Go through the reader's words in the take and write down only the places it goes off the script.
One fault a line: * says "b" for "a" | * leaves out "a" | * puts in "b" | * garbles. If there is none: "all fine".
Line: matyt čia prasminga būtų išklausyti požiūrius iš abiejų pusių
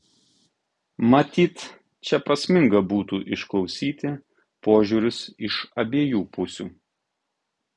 all fine